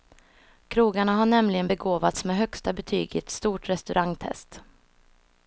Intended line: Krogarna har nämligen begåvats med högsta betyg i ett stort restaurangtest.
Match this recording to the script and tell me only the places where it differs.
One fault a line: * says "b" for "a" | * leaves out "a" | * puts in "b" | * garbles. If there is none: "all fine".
all fine